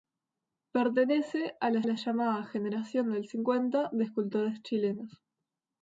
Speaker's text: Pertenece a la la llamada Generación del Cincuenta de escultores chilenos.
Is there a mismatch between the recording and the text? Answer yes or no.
no